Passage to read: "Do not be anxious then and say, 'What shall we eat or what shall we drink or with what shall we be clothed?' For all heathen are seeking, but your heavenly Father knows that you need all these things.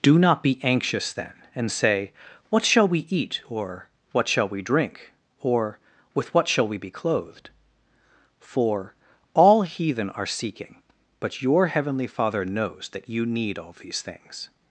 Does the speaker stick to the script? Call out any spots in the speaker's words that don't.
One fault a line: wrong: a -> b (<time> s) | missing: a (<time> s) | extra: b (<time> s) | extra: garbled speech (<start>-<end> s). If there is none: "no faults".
no faults